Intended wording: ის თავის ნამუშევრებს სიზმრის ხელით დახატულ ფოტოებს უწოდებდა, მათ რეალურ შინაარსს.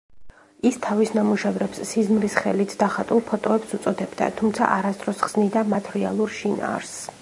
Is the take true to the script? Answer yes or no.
no